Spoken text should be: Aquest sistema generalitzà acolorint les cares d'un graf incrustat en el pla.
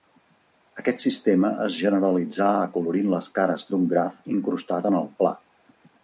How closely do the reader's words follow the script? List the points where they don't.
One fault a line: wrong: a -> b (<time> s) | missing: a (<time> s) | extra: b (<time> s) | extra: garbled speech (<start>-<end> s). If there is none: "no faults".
extra: es (1.6 s)